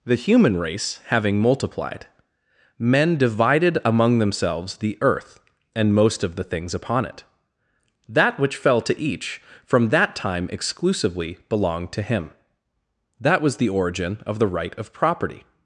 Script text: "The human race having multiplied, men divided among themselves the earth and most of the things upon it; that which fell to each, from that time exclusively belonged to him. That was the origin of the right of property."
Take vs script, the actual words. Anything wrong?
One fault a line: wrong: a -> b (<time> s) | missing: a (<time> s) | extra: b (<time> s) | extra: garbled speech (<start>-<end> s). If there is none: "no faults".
no faults